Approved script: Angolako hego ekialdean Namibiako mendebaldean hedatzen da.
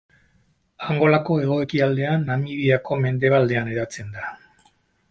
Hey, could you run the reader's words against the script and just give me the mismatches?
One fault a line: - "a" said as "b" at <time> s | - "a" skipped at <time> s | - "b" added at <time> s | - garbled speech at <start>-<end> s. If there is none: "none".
none